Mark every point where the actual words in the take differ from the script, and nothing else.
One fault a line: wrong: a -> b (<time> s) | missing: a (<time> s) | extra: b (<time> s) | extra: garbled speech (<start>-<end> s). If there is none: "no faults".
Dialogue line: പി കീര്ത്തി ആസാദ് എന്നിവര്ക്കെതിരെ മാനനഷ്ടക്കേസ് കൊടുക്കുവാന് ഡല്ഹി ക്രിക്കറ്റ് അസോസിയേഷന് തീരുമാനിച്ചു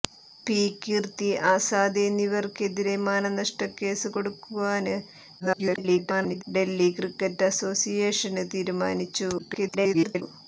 extra: garbled speech (5.4-6.4 s)
extra: garbled speech (9.4-10.2 s)